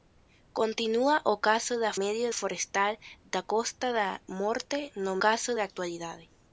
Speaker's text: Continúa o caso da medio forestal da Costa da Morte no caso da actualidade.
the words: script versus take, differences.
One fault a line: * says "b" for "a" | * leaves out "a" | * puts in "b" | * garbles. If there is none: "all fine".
all fine